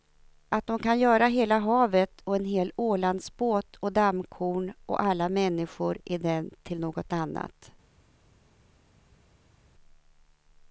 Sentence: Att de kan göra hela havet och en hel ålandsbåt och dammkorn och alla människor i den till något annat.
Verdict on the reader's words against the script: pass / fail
pass